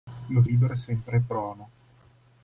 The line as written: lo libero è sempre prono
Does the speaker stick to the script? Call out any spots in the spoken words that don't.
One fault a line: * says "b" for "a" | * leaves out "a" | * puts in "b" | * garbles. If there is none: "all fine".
all fine